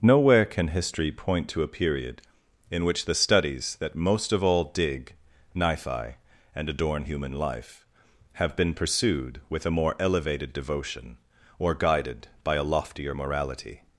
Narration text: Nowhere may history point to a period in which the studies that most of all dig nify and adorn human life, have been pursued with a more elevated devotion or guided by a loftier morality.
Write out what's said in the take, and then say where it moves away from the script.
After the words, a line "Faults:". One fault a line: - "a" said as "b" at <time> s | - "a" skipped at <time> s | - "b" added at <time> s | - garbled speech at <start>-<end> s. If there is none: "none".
Nowhere can history point to a period in which the studies that most of all dig nify and adorn human life, have been pursued with a more elevated devotion or guided by a loftier morality.
Faults:
- "may" said as "can" at 0.5 s